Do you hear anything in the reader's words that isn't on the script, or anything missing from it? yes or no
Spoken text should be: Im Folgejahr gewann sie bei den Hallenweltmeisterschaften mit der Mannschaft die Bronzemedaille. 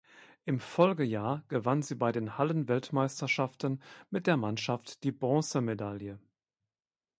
no